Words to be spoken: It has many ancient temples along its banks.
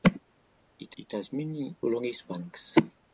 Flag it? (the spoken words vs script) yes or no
yes